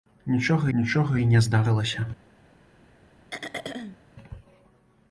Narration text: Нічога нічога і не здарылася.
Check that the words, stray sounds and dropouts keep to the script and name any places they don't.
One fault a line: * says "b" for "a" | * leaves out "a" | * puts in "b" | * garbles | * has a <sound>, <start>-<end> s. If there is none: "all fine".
* has a throat clearing, 3.3-4.0 s